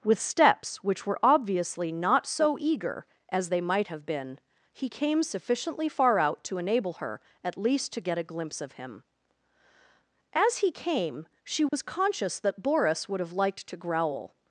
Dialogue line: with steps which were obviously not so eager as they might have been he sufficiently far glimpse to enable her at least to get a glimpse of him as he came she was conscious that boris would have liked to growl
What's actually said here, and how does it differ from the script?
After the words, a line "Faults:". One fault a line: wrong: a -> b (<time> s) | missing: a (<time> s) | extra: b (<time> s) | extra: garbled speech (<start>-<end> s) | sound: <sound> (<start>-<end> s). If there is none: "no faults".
with steps which were obviously not so eager as they might have been he came sufficiently far out to enable her at least to get a glimpse of him as he came she was conscious that boris would have liked to growl
Faults:
extra: came (4.9 s)
wrong: glimpse -> out (6.2 s)
sound: dropout (11.7-11.7 s)